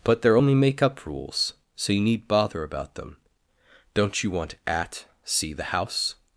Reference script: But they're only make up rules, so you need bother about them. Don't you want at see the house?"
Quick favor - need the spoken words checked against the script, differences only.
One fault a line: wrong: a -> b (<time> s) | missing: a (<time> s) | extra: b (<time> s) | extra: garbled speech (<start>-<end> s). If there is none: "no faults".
no faults